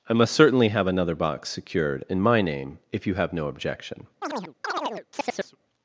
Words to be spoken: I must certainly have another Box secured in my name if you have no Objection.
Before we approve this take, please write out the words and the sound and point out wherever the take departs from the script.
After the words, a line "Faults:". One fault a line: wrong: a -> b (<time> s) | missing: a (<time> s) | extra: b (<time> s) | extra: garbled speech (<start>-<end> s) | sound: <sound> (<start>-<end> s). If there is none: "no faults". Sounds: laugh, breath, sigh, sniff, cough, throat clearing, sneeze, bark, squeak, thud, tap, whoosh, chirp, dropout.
I must certainly have another Box secured in my name if you have no Objection.
Faults:
sound: chirp (4.2-5.6 s)